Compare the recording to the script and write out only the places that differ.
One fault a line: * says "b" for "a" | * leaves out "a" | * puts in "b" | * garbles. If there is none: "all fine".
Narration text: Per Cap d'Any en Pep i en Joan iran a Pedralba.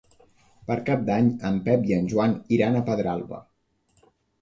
all fine